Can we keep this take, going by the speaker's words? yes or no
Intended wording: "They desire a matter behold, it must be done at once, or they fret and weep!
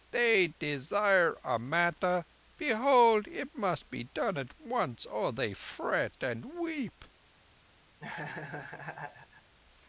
yes